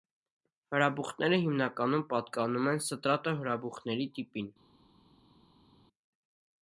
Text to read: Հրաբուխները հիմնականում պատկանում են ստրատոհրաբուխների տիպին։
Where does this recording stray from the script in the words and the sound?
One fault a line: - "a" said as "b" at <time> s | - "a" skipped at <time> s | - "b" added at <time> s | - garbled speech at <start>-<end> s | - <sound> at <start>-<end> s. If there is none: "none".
none